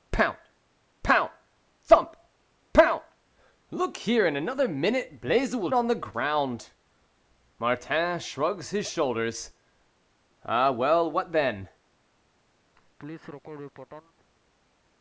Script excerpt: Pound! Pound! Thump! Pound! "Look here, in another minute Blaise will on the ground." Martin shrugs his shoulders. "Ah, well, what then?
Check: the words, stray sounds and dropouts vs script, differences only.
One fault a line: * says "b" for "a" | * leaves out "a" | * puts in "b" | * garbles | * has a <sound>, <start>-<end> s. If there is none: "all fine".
* has a laugh, 12.8-14.1 s